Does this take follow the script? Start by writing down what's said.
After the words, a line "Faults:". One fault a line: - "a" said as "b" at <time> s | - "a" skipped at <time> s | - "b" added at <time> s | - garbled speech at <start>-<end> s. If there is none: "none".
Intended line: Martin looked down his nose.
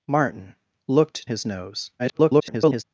Martin looked his nose. [garbled]
Faults:
- "down" skipped at 1.3 s
- garbled speech at 2.0-2.8 s